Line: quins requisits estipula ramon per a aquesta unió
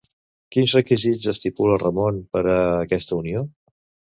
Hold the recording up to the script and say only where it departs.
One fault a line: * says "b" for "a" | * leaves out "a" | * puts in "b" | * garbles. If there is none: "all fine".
all fine